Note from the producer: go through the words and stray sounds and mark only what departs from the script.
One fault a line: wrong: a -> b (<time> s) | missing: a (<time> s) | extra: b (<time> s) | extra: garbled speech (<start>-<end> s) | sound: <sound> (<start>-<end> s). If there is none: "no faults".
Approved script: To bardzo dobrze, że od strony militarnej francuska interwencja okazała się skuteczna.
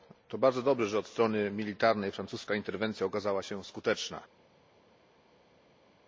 no faults